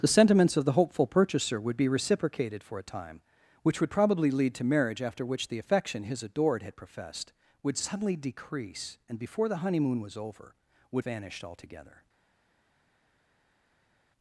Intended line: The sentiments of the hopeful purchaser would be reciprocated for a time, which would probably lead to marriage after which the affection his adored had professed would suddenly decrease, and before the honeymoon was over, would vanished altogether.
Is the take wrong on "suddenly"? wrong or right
right